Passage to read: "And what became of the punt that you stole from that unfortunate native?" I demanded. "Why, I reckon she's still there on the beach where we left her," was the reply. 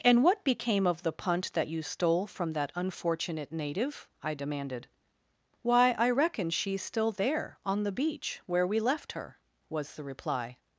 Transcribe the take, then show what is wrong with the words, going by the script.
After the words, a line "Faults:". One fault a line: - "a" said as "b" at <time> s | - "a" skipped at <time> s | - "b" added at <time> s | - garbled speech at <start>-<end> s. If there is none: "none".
"And what became of the punt that you stole from that unfortunate native?" I demanded. "Why, I reckon she's still there on the beach where we left her," was the reply.
Faults:
none